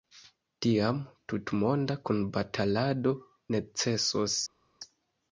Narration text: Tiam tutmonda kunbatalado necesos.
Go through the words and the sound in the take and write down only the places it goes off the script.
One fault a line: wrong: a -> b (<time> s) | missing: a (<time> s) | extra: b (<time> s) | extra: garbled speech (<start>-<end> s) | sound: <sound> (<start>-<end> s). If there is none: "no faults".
no faults